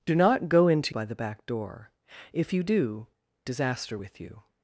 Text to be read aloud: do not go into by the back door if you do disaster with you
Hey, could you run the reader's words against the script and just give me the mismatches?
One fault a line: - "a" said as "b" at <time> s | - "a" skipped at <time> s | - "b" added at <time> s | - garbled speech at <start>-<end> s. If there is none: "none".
none